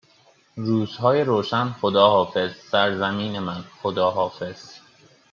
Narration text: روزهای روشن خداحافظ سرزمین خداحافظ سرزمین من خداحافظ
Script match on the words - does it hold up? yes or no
no